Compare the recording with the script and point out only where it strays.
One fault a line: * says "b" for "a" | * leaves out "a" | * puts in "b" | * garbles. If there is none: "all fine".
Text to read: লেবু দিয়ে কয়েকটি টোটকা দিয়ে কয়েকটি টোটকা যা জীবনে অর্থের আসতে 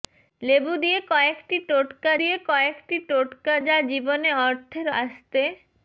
all fine